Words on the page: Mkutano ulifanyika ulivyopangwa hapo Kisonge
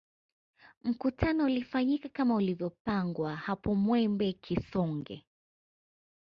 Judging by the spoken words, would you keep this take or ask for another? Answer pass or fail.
fail